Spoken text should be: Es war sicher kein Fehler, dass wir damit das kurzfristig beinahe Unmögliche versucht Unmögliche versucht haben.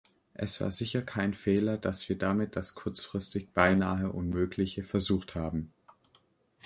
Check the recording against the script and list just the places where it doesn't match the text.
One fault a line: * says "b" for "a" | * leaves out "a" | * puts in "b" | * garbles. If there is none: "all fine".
* leaves out "Unmögliche versucht"